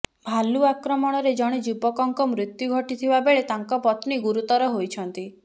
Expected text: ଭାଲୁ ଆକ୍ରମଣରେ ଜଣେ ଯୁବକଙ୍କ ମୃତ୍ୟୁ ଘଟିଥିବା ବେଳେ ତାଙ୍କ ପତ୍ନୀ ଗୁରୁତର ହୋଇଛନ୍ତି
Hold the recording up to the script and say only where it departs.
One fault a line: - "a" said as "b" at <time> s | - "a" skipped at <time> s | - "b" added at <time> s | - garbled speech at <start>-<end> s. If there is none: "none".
none